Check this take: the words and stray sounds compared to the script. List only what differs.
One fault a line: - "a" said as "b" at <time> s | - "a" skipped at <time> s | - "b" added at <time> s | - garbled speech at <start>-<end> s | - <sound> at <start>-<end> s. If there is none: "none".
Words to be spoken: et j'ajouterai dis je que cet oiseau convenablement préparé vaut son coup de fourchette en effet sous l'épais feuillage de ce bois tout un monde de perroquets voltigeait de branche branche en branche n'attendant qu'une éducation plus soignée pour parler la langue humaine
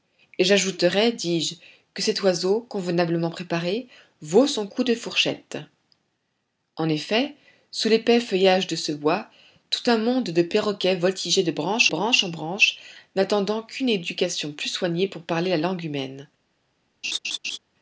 - laugh at 17.0-17.6 s